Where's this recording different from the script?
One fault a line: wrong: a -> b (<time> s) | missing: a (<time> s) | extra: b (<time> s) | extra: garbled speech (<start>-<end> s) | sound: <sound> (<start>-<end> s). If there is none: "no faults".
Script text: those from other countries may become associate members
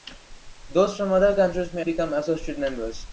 no faults